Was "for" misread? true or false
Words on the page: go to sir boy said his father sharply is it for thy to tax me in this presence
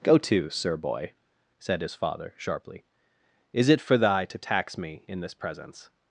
false